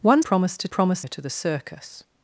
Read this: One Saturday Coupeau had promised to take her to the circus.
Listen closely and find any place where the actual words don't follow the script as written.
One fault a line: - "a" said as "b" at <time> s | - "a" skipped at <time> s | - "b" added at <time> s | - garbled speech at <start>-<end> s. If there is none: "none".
- "Saturday Coupeau had" skipped at 0.2 s
- "take" said as "promised" at 0.7 s